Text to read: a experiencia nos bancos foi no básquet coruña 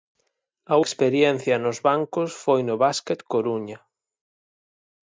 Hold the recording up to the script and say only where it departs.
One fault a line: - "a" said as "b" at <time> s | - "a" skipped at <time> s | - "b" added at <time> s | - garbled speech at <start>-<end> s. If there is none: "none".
none